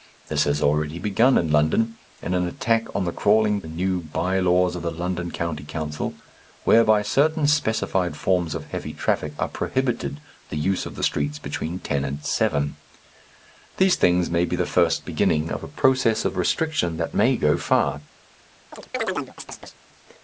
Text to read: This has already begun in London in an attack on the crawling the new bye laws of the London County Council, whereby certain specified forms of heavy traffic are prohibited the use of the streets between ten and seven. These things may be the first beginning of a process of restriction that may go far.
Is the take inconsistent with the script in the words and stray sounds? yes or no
yes